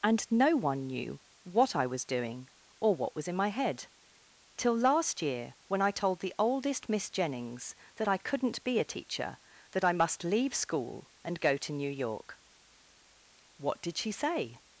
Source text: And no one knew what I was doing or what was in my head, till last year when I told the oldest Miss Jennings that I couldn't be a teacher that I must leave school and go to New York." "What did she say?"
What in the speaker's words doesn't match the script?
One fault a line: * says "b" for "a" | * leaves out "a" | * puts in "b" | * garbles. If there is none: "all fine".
all fine